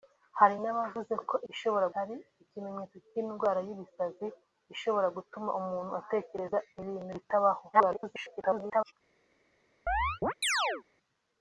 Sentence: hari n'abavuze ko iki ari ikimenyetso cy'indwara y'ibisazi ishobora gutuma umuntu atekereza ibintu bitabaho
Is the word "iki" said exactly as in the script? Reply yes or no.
no